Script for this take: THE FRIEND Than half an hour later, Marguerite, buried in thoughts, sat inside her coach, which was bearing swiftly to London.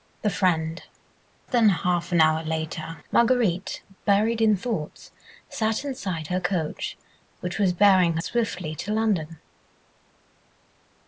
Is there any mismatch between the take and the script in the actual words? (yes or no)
no